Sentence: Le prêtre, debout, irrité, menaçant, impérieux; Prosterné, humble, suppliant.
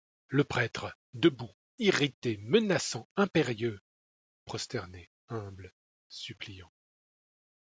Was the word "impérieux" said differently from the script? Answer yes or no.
no